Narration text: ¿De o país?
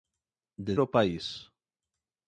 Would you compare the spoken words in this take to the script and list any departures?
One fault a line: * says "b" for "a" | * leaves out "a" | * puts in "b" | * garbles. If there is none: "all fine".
all fine